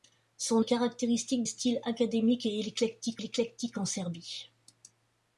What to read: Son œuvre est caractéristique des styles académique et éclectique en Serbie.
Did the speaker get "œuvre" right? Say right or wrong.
wrong